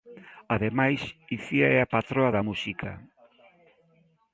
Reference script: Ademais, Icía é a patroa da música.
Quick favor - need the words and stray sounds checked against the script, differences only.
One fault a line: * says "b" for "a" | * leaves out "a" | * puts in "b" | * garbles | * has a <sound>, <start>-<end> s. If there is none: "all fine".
all fine